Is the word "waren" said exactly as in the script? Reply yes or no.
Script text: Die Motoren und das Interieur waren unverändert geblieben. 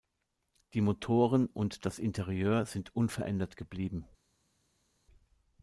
no